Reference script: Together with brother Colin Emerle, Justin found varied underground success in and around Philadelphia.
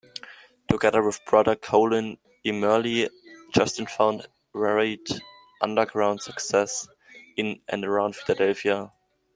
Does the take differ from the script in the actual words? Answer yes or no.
no